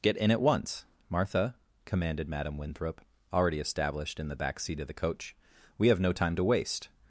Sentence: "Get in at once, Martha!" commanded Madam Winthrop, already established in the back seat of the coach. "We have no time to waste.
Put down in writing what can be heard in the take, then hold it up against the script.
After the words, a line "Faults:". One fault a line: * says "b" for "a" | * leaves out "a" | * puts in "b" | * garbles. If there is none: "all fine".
"Get in at once, Martha!" commanded Madam Winthrop, already established in the back seat of the coach. "We have no time to waste.
Faults:
all fine